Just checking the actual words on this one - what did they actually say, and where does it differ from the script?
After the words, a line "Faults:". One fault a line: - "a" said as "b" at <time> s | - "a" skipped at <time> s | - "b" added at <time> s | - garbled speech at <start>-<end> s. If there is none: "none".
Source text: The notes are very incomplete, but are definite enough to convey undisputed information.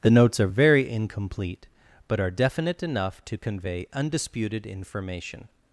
The notes are very incomplete, but are definite enough to convey undisputed information.
Faults:
none